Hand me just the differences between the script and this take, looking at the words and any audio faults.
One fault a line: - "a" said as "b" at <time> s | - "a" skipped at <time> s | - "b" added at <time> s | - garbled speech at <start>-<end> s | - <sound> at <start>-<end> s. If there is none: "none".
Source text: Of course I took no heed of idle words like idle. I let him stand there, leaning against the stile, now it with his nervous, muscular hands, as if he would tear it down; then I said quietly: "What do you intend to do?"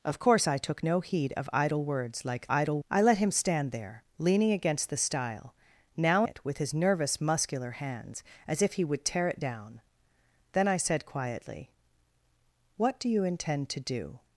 none